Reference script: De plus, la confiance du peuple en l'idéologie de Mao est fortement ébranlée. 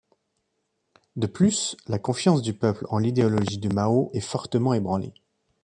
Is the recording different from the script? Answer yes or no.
no